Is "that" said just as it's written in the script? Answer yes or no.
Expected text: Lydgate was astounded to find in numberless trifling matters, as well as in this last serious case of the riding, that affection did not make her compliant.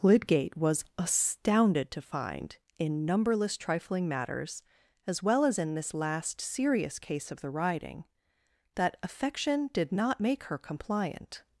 yes